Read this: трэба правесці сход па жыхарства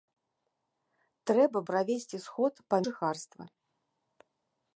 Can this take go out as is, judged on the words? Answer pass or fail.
pass